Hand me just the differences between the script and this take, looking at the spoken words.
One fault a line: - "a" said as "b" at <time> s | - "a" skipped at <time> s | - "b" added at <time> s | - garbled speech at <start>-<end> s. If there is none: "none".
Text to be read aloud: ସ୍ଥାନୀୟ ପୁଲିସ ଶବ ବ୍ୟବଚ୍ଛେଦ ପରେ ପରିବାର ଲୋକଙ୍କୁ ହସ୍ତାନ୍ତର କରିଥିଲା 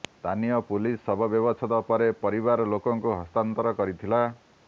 none